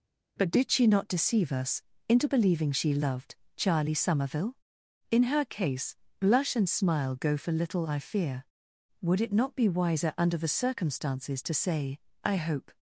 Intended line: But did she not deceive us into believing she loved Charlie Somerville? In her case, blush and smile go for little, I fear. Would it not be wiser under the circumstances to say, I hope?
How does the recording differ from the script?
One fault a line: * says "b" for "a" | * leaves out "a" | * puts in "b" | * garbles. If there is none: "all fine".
all fine